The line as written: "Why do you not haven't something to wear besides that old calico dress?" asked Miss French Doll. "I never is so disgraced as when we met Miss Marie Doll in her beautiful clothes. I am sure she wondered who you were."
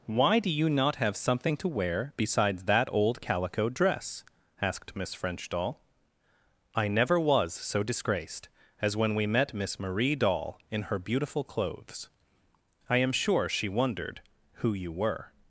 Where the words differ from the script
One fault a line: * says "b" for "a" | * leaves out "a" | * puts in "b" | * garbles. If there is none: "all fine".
* says "have" for "haven't"
* says "was" for "is"